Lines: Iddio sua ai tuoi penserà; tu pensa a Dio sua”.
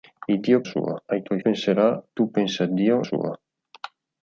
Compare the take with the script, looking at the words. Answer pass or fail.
pass